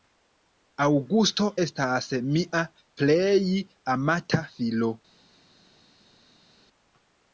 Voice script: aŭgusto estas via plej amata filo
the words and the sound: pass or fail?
fail